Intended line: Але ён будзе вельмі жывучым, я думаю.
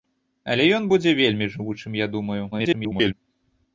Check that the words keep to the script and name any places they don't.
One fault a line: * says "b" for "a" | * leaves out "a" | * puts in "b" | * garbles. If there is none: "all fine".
* garbles